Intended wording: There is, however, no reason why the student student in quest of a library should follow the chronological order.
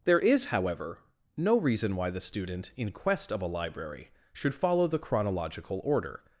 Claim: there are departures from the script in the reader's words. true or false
true